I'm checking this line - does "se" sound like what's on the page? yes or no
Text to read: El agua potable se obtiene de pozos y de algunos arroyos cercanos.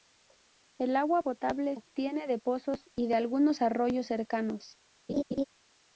no